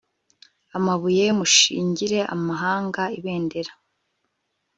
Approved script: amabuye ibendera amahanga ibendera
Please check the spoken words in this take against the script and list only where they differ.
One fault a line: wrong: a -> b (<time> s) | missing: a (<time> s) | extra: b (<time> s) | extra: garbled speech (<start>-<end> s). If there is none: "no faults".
wrong: ibendera -> mushingire (1.4 s)